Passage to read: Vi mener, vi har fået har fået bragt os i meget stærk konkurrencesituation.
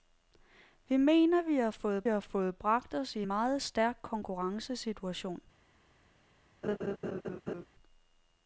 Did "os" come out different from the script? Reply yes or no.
no